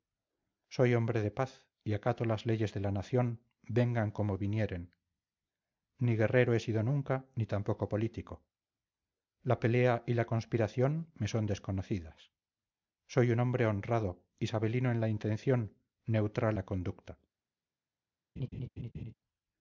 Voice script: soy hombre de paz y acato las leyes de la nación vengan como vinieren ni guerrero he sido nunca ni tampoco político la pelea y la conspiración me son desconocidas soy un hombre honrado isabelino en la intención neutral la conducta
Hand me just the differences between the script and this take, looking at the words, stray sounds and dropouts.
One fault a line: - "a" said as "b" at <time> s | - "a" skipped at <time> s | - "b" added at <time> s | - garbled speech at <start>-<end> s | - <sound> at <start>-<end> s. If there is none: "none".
- laugh at 18.4-19.1 s